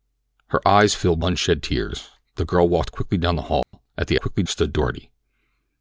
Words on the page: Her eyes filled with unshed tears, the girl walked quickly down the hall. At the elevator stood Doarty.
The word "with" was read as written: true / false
false